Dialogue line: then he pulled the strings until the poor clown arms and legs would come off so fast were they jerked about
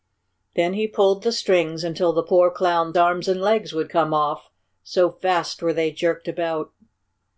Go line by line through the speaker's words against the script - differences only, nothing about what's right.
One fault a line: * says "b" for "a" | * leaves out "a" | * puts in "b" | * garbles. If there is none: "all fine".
all fine